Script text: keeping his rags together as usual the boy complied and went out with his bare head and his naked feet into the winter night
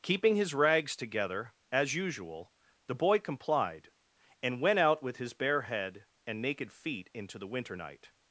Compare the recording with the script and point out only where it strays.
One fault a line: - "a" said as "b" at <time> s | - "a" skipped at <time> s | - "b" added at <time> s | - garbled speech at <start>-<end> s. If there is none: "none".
- "his" skipped at 6.4 s